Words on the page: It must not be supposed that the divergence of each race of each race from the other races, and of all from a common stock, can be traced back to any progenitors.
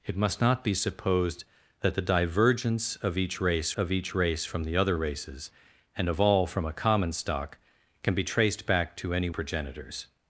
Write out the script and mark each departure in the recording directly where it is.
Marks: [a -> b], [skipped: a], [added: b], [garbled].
It must not be supposed that the divergence of each race of each race from the other races, and of all from a common stock, can be traced back to any progenitors.